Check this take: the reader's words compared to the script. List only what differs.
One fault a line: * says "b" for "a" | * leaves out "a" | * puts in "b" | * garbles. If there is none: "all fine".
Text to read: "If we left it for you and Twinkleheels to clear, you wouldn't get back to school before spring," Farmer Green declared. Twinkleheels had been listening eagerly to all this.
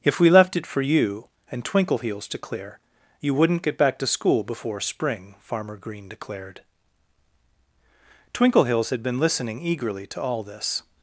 all fine